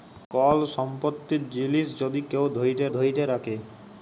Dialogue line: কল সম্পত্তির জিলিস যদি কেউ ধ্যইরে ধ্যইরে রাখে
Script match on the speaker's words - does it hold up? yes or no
yes